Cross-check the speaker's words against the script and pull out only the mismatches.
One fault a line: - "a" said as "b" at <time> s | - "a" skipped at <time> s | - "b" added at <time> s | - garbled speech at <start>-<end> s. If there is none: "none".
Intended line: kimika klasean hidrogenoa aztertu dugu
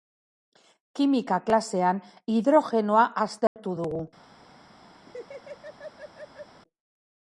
none